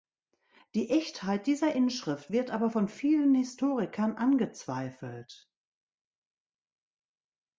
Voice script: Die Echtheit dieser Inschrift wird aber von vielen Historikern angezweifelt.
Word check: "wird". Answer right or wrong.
right